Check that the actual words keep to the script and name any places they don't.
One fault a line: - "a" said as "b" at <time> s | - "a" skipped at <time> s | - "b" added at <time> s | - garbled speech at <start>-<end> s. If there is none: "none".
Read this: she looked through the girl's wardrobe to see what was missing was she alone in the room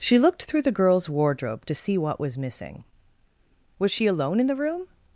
none